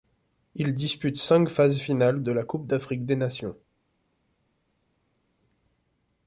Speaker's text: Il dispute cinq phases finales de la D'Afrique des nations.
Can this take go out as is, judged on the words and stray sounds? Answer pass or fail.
fail